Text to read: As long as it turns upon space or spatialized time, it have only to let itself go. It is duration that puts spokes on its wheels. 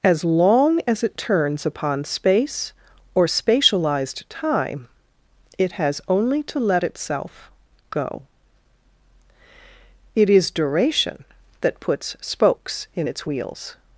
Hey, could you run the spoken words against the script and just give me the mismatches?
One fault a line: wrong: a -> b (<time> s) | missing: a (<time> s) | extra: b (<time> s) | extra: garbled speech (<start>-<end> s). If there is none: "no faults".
wrong: have -> has (5.7 s)
wrong: on -> in (12.9 s)